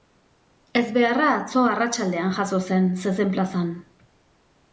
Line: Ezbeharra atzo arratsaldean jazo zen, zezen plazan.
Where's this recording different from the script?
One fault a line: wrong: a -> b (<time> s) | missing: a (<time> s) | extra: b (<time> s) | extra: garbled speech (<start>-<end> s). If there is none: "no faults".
no faults